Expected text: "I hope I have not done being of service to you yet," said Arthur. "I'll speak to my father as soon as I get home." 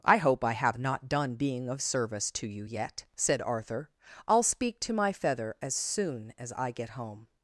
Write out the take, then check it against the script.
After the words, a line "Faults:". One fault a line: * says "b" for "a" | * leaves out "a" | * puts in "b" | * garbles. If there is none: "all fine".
"I hope I have not done being of service to you yet," said Arthur. "I'll speak to my feather as soon as I get home."
Faults:
* says "feather" for "father"